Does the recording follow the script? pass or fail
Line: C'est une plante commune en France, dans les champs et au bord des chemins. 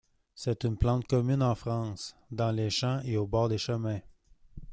pass